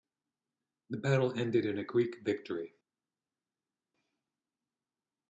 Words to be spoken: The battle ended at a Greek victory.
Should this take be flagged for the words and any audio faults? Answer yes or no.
yes